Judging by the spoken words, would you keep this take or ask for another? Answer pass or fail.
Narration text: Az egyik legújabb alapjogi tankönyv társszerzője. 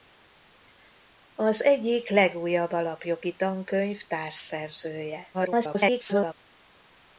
fail